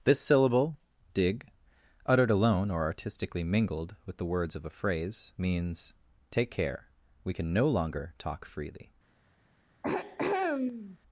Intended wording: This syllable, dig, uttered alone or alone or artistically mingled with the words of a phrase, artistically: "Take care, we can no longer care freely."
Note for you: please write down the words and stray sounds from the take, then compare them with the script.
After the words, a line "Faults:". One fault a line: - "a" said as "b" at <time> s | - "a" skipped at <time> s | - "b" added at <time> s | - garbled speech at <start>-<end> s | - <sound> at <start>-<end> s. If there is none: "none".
This syllable, dig, uttered alone or artistically mingled with the words of a phrase, means: "Take care, we can no longer talk freely."
Faults:
- "alone or" skipped at 2.8 s
- "artistically" said as "means" at 5.4 s
- "care" said as "talk" at 8.2 s
- throat clearing at 9.8-11.0 s